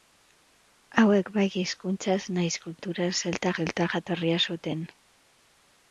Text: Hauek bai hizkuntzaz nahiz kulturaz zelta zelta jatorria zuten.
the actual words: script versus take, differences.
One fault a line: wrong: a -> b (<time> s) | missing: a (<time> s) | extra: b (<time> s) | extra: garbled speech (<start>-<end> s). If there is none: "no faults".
no faults